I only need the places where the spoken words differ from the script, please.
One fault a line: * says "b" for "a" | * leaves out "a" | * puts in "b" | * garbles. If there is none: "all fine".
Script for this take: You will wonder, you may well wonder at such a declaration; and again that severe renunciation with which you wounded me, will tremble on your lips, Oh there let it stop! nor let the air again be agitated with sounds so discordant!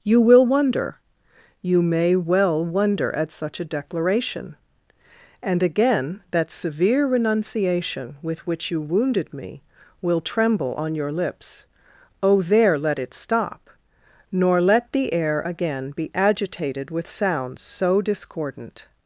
all fine